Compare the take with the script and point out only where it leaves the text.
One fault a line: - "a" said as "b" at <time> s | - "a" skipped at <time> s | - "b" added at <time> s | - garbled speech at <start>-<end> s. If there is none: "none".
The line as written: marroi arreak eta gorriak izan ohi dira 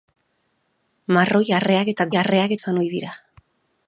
- "gorriak" said as "arreak" at 2.2 s